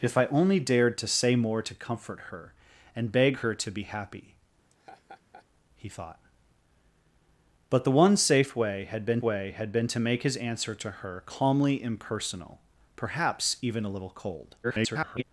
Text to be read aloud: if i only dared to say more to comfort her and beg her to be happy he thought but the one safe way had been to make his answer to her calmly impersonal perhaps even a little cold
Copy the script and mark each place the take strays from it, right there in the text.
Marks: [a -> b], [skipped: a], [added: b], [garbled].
if i only dared to say more to comfort her and beg her to be happy he thought but the one safe way had been [added: way had been] to make his answer to her calmly impersonal perhaps even a little cold [garbled]